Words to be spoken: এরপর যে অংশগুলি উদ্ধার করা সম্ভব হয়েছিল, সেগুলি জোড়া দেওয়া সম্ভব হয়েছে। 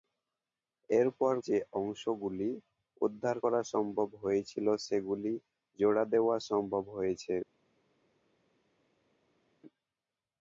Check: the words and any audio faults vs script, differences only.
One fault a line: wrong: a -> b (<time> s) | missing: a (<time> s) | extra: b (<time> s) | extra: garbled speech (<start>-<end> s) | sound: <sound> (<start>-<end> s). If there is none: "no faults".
no faults